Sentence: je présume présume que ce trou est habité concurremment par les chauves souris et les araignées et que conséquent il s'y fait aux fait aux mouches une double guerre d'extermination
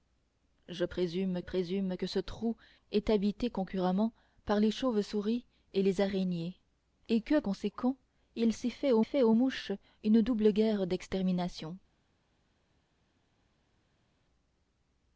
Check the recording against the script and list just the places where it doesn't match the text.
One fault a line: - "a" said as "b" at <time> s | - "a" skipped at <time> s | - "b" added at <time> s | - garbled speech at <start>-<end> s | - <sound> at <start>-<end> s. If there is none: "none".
none